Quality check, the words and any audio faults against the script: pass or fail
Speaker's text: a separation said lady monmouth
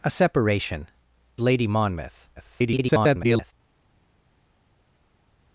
fail